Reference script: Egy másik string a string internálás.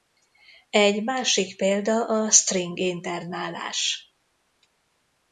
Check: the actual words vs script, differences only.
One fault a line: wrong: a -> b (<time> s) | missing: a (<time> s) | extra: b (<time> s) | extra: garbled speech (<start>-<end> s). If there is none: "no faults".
wrong: string -> példa (1.6 s)